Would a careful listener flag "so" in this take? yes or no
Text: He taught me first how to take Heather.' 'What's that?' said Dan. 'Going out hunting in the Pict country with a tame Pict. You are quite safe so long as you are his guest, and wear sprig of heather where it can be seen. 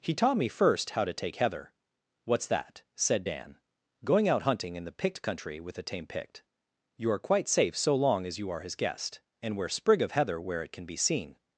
no